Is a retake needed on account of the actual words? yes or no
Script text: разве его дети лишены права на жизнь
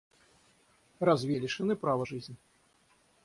yes